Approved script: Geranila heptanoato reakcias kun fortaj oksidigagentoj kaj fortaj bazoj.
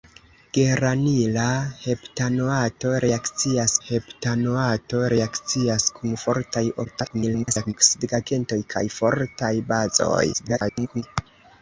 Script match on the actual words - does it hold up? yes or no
no